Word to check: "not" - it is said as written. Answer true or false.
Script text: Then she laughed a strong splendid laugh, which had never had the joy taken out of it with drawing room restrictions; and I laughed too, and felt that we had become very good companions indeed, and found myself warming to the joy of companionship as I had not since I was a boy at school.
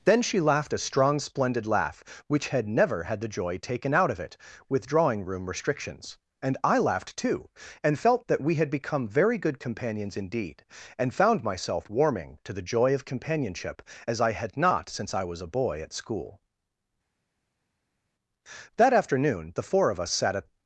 true